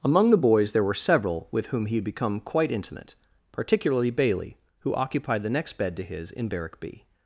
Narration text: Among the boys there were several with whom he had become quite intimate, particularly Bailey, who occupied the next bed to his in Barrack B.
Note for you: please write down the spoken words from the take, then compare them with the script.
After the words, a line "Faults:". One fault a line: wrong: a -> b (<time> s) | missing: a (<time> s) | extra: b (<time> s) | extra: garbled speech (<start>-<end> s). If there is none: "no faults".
Among the boys there were several with whom he had become quite intimate, particularly Bailey, who occupied the next bed to his in Barrack B.
Faults:
no faults